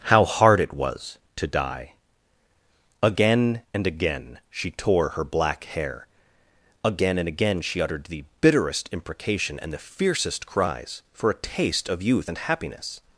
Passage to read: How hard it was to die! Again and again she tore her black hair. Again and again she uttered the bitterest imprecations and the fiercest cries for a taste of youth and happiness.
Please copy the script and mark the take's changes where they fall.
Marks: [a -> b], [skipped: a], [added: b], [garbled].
How hard it was to die! Again and again she tore her black hair. Again and again she uttered the bitterest [imprecations -> imprecation] and the fiercest cries for a taste of youth and happiness.